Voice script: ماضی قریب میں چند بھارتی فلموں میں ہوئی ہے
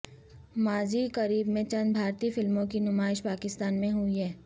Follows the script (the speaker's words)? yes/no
no